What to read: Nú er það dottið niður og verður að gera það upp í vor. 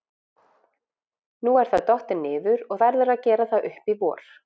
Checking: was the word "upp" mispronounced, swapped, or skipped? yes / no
no